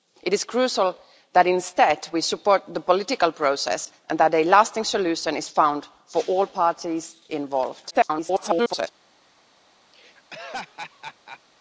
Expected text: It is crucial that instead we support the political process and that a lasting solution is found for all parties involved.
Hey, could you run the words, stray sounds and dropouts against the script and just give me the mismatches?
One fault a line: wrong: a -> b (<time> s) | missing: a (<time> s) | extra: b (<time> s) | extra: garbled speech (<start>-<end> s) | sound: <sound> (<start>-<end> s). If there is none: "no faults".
extra: garbled speech (7.9-8.9 s)
sound: laugh (9.9-11.4 s)